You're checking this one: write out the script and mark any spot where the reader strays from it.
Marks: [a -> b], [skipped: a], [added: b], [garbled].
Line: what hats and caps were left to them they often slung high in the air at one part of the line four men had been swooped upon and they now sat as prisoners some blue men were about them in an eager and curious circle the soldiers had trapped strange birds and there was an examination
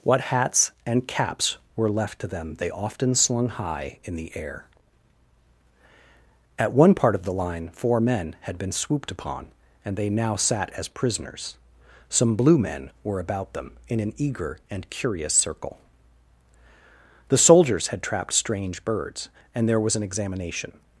what hats and caps were left to them they often slung high in the air at one part of the line four men had been swooped upon and they now sat as prisoners some blue men were about them in an eager and curious circle the soldiers had trapped strange birds and there was an examination